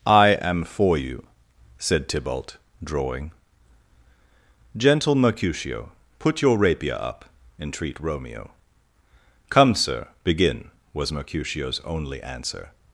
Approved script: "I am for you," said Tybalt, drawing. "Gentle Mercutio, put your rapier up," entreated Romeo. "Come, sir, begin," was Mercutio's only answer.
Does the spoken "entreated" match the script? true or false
false